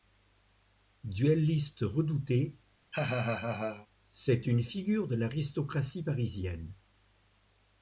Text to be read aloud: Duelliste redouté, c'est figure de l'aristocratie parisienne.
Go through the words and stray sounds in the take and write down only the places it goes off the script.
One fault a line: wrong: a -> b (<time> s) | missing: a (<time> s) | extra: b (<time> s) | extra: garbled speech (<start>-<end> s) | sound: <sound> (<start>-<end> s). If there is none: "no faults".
sound: laugh (2.9-3.9 s)
extra: une (4.5 s)